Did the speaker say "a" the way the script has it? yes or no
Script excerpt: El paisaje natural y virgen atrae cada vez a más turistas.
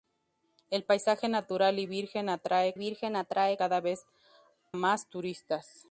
no